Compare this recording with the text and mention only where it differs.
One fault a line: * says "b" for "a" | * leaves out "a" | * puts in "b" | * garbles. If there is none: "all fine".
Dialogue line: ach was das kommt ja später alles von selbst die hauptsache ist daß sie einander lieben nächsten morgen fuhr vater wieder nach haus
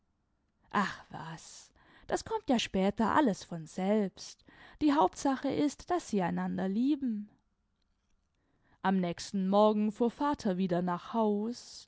* puts in "am"